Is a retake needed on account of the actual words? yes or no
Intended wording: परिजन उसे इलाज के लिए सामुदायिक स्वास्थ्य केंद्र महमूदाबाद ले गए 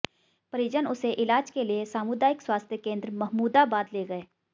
no